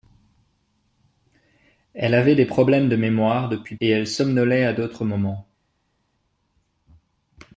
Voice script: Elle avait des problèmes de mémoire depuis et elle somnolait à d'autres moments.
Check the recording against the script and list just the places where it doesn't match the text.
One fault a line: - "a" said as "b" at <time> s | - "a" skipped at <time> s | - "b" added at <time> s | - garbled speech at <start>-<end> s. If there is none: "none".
none